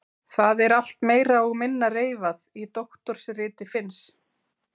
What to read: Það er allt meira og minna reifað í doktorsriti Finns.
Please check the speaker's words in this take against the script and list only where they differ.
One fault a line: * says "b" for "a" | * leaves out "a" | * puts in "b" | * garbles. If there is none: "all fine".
all fine